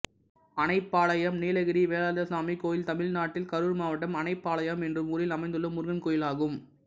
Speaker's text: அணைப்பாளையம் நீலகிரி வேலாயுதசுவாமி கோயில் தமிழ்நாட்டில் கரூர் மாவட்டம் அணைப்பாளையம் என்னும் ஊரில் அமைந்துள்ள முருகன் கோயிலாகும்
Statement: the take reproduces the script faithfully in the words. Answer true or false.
true